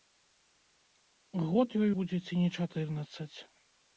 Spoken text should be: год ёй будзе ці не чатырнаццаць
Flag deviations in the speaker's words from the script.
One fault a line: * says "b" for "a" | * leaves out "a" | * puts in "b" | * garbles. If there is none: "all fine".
all fine